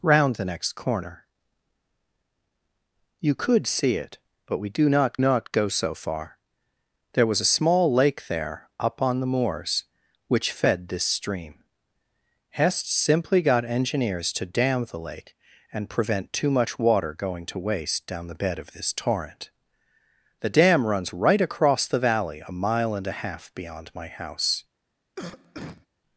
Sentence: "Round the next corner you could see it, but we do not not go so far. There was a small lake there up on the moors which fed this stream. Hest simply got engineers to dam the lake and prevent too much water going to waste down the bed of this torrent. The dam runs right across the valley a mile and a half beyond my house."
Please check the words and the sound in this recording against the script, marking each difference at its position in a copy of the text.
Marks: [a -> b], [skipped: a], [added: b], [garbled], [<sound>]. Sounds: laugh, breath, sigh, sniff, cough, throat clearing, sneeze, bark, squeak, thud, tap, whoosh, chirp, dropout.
"Round the next corner you could see it, but we do not not go so far. There was a small lake there up on the moors which fed this stream. Hest simply got engineers to dam the lake and prevent too much water going to waste down the bed of this torrent. The dam runs right across the valley a mile and a half beyond my house." [cough]